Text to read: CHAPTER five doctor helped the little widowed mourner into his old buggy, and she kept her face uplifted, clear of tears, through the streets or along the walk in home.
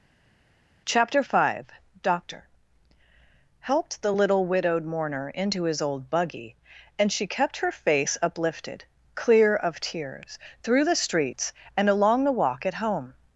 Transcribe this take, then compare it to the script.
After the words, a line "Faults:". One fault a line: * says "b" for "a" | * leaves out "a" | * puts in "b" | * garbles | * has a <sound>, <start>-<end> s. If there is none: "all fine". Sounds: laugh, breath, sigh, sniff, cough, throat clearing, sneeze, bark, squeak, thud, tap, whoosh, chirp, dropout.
CHAPTER five doctor helped the little widowed mourner into his old buggy, and she kept her face uplifted, clear of tears, through the streets and along the walk at home.
Faults:
* says "and" for "or"
* says "at" for "in"